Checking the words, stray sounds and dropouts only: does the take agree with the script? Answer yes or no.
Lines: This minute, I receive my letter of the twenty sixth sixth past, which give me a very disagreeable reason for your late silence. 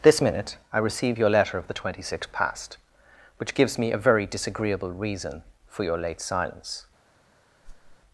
no